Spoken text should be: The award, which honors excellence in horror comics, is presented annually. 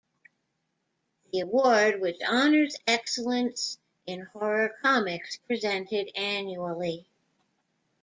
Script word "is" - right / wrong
wrong